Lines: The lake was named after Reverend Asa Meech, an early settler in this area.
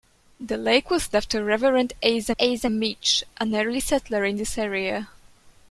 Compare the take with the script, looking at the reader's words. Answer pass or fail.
fail